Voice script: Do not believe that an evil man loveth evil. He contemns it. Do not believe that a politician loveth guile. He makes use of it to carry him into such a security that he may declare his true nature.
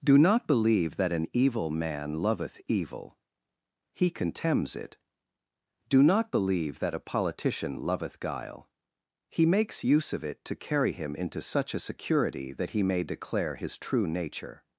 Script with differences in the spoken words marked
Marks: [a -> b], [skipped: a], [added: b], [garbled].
Do not believe that an evil man loveth evil. He contemns it. Do not believe that a politician loveth guile. He makes use of it to carry him into such a security that he may declare his true nature.